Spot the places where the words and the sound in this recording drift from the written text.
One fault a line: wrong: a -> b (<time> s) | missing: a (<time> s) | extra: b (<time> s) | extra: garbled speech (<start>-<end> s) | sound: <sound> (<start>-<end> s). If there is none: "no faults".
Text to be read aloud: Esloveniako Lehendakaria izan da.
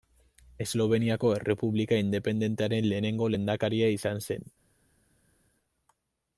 extra: Errepublika independentearen lehenengo (1.4 s)
wrong: da -> zen (4.3 s)